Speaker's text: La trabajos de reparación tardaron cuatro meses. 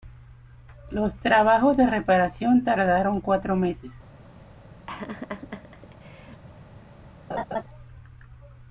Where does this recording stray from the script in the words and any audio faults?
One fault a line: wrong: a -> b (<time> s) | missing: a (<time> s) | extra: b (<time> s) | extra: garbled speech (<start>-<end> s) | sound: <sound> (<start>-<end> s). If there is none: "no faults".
wrong: La -> Los (0.9 s)
sound: laugh (4.9-6.4 s)
sound: laugh (7.3-7.6 s)